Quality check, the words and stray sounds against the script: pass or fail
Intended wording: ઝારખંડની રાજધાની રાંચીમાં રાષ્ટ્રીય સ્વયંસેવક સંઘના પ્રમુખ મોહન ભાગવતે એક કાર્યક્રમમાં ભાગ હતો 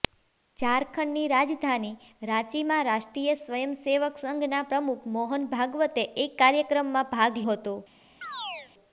fail